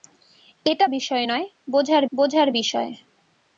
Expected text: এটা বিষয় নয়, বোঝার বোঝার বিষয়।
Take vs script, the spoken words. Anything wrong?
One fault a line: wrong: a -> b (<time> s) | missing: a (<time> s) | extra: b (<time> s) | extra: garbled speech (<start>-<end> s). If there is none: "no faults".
no faults